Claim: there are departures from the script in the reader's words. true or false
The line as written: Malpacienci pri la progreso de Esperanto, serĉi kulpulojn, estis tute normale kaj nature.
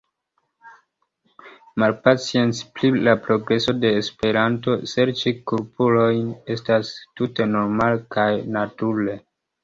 true